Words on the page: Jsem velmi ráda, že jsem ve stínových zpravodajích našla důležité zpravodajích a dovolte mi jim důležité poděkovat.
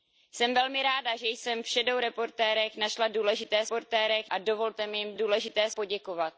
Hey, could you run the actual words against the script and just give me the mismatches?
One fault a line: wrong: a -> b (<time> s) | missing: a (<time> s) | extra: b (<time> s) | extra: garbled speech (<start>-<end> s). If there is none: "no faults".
no faults